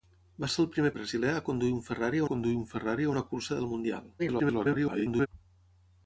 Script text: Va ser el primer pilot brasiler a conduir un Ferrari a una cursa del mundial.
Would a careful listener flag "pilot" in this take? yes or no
yes